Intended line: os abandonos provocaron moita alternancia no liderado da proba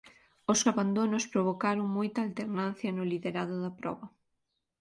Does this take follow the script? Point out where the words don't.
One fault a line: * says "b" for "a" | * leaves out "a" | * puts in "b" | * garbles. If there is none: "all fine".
all fine